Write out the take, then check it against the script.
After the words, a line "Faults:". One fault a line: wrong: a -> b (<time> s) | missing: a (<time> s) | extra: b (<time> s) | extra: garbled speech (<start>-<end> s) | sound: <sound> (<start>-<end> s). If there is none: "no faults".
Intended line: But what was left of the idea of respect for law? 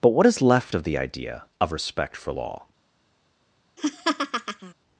But what is left of the idea of respect for law?
Faults:
wrong: was -> is (0.2 s)
sound: laugh (3.8-4.7 s)